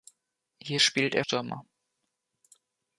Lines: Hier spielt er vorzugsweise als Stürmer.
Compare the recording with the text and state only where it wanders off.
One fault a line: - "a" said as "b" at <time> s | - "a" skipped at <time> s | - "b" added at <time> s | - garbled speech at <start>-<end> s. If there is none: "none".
- "vorzugsweise als" skipped at 1.3 s